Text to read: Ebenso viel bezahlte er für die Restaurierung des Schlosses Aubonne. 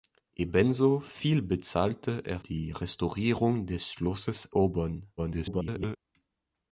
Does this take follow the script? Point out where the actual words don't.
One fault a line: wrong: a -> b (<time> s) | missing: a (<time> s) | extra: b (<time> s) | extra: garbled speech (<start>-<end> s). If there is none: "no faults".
missing: für (2.4 s)
extra: garbled speech (5.2-6.0 s)